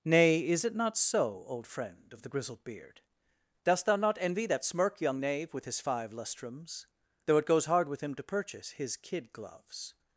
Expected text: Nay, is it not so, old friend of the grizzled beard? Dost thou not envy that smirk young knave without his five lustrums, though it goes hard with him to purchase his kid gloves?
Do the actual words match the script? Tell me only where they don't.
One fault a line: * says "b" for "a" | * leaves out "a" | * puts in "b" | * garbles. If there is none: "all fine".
* says "with" for "without"